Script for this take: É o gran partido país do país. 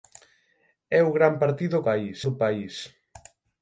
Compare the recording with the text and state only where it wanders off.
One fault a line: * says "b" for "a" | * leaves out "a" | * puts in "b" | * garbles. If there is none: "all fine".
all fine